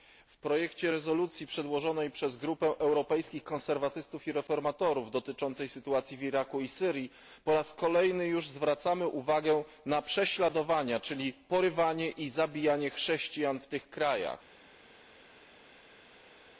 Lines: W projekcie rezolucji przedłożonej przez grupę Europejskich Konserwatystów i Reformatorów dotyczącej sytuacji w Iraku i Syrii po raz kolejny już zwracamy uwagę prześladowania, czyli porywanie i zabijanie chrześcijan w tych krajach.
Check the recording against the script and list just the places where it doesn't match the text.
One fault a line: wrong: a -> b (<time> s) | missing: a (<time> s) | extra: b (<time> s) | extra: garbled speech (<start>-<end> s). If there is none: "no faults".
extra: na (9.9 s)